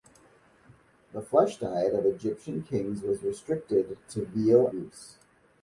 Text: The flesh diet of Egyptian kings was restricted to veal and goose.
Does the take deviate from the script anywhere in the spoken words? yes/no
yes